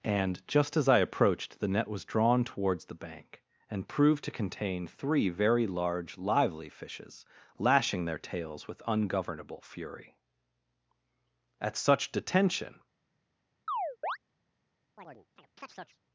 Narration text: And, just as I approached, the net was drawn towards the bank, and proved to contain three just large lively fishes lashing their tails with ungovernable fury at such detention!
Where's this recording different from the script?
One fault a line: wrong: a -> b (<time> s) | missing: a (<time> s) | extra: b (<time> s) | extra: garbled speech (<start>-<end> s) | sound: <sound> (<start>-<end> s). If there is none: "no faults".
wrong: just -> very (5.3 s)
sound: chirp (13.7-14.2 s)
sound: chirp (15.0-16.0 s)